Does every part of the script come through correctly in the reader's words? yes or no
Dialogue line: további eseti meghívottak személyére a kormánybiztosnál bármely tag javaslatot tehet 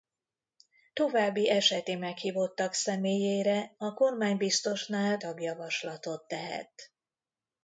no